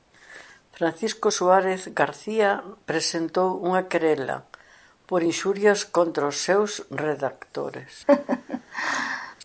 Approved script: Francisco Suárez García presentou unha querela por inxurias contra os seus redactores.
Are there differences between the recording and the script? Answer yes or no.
no